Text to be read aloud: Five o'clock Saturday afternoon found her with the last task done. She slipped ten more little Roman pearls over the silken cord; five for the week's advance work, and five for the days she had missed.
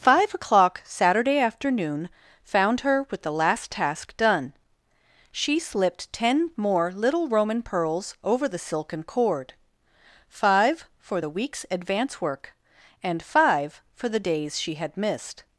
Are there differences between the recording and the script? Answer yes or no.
no